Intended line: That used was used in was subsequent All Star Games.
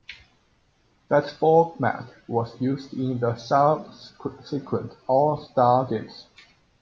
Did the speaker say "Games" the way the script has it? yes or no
yes